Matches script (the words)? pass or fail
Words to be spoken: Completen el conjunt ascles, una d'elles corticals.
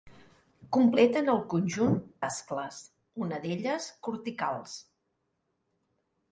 pass